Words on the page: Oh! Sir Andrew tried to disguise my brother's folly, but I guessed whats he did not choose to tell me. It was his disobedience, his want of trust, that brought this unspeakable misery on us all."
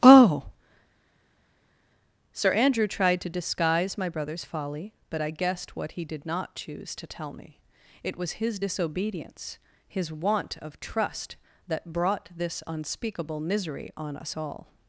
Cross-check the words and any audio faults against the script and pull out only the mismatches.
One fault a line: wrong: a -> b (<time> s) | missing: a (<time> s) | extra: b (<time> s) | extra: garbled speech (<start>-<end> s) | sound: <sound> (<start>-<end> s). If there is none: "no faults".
wrong: whats -> what (5.7 s)